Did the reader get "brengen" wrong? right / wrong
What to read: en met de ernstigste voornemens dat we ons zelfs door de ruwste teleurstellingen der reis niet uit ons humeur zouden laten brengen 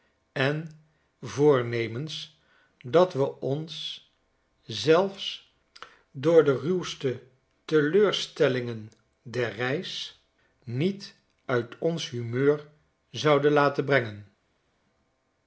right